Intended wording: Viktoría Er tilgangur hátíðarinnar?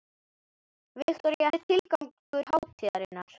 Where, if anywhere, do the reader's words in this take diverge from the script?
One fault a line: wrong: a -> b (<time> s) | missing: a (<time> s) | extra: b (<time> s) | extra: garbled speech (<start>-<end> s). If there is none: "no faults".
no faults